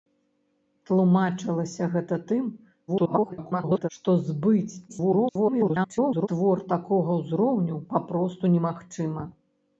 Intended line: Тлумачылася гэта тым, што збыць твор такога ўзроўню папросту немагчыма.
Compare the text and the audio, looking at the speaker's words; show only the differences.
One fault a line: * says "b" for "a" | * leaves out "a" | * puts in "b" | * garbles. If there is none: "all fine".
* garbles
* garbles